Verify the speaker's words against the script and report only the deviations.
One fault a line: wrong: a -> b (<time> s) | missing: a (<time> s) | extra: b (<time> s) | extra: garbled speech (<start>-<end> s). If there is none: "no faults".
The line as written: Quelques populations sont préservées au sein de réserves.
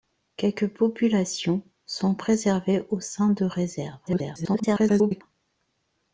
extra: garbled speech (4.1-5.2 s)